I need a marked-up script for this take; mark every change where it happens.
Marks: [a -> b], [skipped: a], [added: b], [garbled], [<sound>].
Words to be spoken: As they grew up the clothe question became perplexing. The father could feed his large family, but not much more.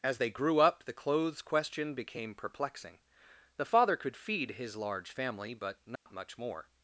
As they grew up the [clothe -> clothes] question became perplexing. The father could feed his large family, but not [dropout] much more.